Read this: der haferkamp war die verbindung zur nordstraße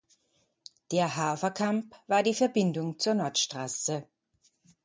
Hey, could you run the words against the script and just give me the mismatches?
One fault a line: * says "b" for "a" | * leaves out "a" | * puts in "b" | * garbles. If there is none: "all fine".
all fine